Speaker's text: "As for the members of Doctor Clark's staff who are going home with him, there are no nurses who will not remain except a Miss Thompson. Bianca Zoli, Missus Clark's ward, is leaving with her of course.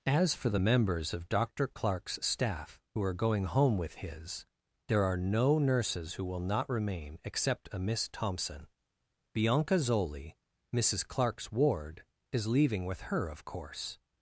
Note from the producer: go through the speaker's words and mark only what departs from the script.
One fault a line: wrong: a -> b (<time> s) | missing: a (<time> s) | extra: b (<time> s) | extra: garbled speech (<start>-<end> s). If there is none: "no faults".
wrong: him -> his (4.0 s)